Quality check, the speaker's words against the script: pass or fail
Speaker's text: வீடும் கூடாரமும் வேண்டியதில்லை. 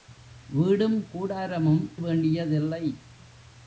pass